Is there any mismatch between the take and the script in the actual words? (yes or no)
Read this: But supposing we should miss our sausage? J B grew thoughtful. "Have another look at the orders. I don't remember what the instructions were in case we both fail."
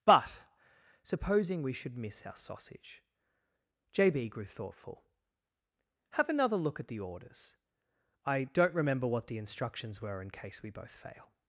no